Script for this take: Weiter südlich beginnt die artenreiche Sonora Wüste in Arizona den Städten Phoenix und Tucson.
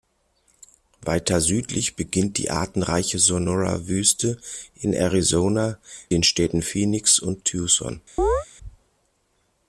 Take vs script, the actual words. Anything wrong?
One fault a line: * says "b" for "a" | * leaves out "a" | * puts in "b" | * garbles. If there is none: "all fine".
all fine